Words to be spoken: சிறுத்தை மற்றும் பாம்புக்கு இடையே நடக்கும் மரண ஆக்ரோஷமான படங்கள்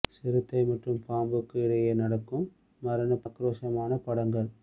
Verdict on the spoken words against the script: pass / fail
pass